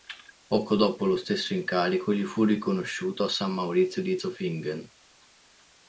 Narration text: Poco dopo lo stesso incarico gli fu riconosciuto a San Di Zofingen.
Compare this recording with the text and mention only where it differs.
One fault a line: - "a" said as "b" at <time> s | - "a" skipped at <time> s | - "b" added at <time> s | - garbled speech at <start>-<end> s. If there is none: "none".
- "Maurizio" added at 3.5 s